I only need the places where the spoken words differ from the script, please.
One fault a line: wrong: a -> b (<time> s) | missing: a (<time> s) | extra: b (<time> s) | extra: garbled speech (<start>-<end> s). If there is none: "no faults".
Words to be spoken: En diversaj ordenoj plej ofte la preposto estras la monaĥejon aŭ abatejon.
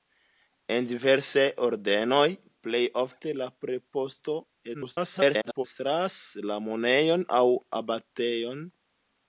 extra: garbled speech (4.7-5.6 s)